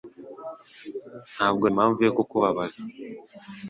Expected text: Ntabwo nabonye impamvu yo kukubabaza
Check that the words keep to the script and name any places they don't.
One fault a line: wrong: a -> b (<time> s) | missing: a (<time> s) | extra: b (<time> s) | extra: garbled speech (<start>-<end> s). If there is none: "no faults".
missing: nabonye (1.6 s)